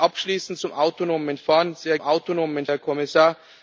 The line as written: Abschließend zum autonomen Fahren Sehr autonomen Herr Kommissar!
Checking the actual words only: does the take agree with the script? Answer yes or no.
yes